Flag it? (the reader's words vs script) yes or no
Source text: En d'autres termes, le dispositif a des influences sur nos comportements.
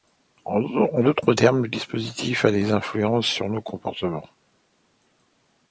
no